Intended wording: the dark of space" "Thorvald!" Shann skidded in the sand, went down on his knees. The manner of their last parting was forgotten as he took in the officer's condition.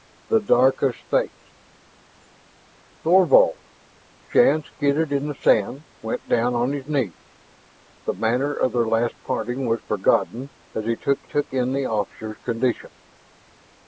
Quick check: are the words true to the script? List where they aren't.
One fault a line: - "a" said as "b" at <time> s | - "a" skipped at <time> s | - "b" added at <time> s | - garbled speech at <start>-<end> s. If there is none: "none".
- "took" added at 11.2 s